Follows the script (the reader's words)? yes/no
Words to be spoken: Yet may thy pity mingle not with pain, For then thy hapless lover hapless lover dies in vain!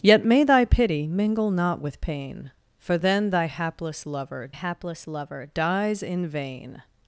yes